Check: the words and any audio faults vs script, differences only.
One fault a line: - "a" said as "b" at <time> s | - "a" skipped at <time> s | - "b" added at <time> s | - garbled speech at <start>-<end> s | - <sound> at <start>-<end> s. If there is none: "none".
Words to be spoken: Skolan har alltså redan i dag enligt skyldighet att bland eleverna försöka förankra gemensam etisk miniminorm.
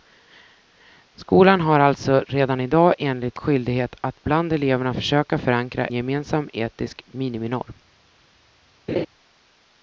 - laugh at 8.9-9.1 s